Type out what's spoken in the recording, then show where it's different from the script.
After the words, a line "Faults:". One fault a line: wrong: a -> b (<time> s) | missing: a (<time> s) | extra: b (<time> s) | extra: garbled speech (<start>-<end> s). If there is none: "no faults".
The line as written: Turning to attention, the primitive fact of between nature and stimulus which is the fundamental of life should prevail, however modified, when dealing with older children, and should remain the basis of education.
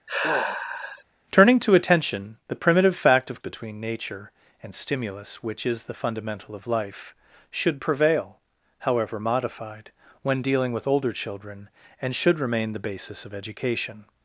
Turning to attention, the primitive fact of between nature and stimulus which is the fundamental of life should prevail, however modified, when dealing with older children, and should remain the basis of education.
Faults:
no faults